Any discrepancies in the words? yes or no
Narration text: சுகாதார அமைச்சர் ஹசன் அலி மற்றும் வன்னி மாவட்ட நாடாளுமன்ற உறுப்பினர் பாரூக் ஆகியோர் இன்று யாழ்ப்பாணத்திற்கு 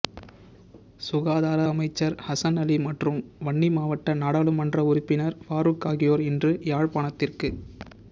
no